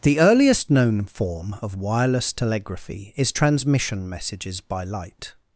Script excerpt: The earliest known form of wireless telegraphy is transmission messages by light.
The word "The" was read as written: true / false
true